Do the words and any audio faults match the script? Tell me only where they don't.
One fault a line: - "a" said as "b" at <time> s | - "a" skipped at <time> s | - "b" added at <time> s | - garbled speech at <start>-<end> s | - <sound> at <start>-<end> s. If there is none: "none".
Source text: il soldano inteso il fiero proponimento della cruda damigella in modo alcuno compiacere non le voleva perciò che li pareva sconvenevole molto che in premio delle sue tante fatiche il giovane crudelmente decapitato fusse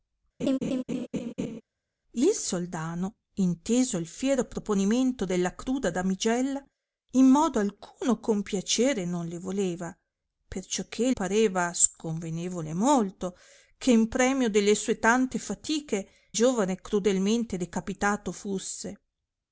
- laugh at 0.4-1.6 s
- "li" skipped at 11.1 s
- "il" skipped at 16.1 s